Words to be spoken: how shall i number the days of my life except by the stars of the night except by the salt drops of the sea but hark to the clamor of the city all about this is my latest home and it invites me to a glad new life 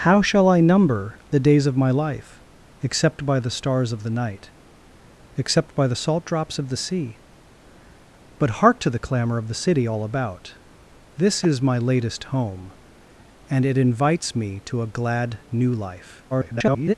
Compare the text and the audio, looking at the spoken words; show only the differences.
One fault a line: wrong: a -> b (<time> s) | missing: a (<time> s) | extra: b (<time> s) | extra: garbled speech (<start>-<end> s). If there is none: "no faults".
extra: garbled speech (16.3-16.9 s)